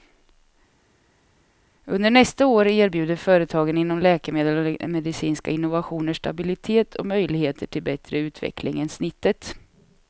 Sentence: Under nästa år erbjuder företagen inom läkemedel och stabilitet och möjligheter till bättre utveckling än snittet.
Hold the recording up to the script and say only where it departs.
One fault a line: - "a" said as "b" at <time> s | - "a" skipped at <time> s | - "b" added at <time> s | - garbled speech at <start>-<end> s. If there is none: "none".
- "medicinska innovationer" added at 4.9 s